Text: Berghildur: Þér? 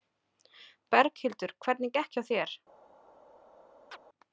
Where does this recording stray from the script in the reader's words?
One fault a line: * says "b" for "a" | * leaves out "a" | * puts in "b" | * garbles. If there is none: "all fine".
* puts in "Hvernig gekk hjá"